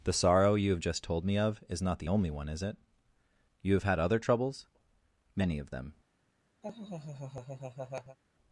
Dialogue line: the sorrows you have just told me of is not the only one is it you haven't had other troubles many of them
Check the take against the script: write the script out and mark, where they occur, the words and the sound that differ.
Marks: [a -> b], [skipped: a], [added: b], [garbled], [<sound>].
the [sorrows -> sorrow] you have just told me of is not the only one is it you [haven't -> have] had other troubles many of them [laugh]